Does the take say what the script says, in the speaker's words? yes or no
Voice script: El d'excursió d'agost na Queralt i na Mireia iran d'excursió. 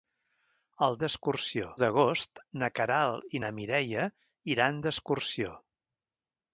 yes